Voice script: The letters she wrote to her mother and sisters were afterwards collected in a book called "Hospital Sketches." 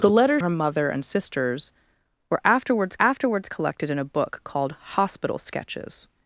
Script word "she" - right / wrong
wrong